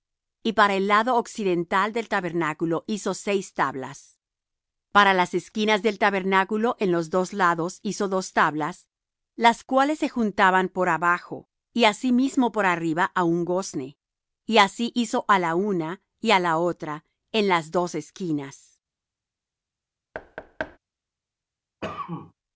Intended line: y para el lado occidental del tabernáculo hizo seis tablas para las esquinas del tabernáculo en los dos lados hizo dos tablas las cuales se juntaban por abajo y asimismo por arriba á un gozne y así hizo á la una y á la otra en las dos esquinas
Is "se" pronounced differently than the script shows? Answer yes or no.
no